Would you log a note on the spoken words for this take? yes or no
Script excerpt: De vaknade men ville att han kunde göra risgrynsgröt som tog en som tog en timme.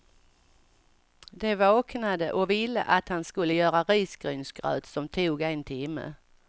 yes